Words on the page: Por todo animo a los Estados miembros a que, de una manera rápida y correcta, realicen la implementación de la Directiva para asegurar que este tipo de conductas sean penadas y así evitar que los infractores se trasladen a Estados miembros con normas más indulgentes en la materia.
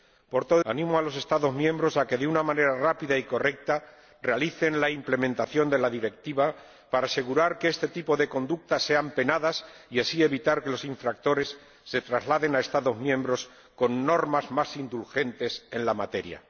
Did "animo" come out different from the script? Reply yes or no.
no